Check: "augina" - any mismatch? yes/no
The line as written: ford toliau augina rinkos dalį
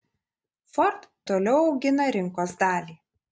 no